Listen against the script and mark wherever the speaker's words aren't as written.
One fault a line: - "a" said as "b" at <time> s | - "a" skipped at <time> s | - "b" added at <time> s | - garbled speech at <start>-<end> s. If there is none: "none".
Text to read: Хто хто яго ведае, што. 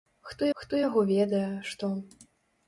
none